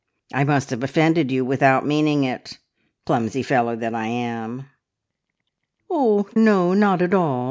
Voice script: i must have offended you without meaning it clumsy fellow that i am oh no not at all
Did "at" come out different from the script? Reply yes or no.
no